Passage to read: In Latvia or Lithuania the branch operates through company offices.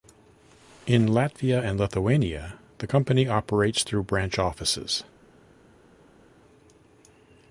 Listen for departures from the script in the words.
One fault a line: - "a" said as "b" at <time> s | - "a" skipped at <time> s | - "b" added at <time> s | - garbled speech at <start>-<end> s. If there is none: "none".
- "or" said as "and" at 1.6 s
- "branch" said as "company" at 2.8 s
- "company" said as "branch" at 4.0 s